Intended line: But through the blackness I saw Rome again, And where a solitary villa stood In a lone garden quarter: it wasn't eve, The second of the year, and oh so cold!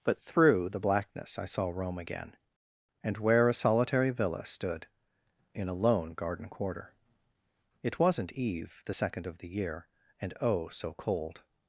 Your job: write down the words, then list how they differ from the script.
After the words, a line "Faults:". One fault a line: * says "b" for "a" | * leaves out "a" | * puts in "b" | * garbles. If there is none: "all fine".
But through the blackness I saw Rome again, And where a solitary villa stood In a lone garden quarter: it wasn't eve, The second of the year, and oh so cold!
Faults:
all fine